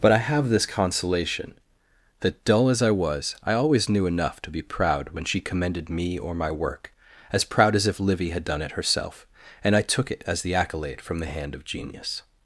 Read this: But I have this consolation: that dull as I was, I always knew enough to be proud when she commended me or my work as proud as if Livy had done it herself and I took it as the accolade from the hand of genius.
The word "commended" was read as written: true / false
true